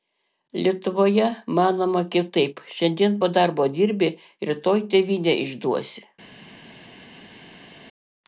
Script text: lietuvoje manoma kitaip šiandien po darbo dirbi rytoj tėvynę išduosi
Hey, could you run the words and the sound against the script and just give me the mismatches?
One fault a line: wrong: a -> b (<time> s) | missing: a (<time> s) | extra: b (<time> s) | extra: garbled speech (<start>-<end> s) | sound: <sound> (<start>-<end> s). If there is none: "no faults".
no faults